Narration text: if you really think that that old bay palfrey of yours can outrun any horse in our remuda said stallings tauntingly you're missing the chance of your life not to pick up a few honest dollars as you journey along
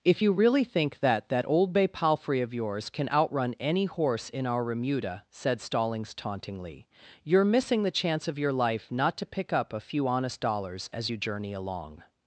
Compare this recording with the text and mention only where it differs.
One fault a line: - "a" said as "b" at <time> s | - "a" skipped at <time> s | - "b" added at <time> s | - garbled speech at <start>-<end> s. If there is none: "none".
none